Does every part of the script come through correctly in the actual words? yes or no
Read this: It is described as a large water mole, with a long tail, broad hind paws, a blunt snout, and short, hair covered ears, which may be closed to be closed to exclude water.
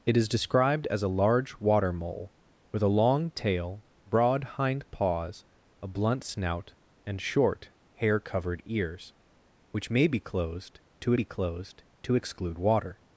yes